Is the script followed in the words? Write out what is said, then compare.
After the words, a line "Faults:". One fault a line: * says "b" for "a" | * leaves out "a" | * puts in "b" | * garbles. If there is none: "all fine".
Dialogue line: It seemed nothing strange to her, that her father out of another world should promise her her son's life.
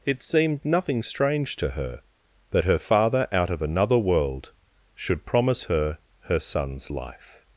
It seemed nothing strange to her, that her father out of another world should promise her her son's life.
Faults:
all fine